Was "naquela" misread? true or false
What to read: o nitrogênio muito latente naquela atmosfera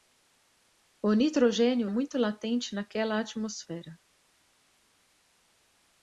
false